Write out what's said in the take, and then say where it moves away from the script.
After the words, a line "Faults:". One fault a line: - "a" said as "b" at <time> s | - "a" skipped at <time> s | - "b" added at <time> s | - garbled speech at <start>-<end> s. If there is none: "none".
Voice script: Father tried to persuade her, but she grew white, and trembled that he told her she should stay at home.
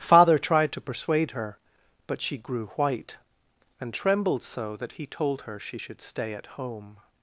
Father tried to persuade her, but she grew white, and trembled so that he told her she should stay at home.
Faults:
- "so" added at 4.4 s